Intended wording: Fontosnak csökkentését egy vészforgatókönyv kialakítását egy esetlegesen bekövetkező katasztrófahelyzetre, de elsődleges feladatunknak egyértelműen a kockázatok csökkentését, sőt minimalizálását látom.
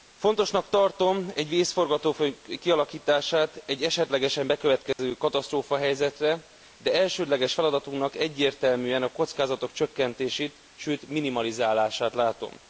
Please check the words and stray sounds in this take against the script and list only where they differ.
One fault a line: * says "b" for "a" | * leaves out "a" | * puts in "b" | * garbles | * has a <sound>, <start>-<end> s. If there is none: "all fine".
* says "tartom" for "csökkentését"
* has a dropout, 4.9-5.0 s